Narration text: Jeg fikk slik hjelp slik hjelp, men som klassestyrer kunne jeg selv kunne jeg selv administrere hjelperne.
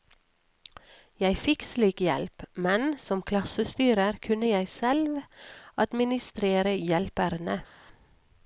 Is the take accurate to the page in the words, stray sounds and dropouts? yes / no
no